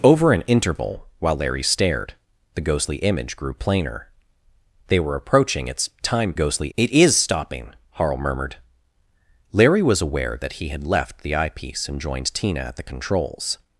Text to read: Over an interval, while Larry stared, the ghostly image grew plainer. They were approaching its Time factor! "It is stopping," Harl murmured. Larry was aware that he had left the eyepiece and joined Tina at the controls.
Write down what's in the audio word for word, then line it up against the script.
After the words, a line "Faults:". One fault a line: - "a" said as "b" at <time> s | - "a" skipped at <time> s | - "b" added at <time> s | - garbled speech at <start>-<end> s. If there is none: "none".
Over an interval, while Larry stared, the ghostly image grew plainer. They were approaching its Time ghostly! "It is stopping," Harl murmured. Larry was aware that he had left the eyepiece and joined Tina at the controls.
Faults:
- "factor" said as "ghostly" at 6.3 s